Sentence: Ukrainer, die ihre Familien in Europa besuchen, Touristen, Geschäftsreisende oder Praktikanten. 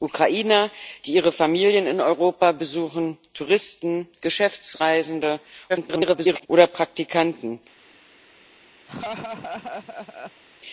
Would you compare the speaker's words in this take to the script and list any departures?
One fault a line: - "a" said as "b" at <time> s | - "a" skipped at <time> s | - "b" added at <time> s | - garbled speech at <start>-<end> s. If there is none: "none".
- garbled speech at 5.7-6.5 s